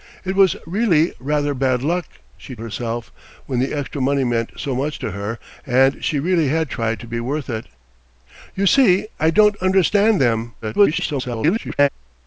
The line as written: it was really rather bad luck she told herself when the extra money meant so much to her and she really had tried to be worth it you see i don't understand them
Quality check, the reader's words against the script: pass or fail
fail